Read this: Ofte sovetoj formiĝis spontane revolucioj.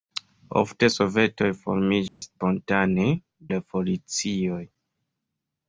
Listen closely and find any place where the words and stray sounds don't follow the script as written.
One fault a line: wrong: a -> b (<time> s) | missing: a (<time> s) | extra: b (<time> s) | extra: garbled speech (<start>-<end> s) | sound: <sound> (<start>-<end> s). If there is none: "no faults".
sound: dropout (2.1-2.2 s)